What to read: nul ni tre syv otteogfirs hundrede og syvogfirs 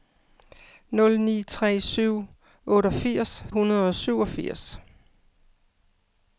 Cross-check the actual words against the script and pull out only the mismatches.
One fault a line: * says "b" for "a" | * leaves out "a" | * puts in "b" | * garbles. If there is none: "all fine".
all fine